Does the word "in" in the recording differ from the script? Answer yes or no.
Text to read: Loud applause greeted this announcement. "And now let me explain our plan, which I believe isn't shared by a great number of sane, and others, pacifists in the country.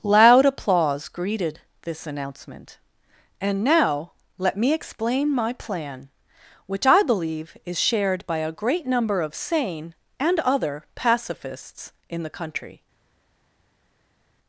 no